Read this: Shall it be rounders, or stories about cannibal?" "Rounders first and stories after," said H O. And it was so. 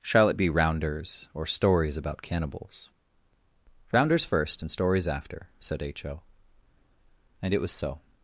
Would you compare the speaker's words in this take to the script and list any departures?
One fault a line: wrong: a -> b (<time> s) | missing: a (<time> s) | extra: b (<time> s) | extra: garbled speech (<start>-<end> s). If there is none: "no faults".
wrong: cannibal -> cannibals (2.2 s)